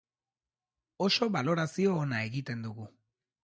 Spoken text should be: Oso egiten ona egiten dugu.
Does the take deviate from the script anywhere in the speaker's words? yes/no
yes